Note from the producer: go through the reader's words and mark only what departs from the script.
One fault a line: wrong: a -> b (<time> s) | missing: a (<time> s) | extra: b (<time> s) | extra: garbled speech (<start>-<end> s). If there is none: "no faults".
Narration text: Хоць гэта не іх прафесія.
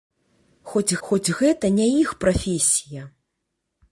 extra: хоць (1.1 s)